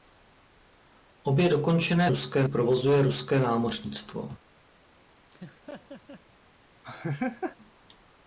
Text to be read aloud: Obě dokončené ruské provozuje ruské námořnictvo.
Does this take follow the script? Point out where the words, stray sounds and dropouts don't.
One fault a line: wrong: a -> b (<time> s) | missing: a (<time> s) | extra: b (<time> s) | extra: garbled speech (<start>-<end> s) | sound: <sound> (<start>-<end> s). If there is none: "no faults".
sound: laugh (5.3-6.2 s)
sound: laugh (6.8-7.6 s)